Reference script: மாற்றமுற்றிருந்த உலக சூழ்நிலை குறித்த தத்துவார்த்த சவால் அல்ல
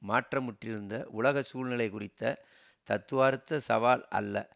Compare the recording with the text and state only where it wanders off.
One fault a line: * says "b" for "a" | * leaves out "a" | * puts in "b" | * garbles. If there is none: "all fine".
all fine